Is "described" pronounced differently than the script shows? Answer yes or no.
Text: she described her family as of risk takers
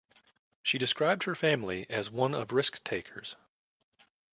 no